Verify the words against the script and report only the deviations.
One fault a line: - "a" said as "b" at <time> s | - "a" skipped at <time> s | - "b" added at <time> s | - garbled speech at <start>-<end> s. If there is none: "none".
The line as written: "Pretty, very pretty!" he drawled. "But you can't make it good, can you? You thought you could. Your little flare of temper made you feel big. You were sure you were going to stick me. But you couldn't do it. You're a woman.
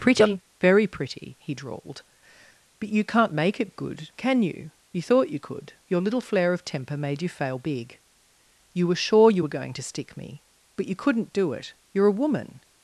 - "feel" said as "fail" at 7.3 s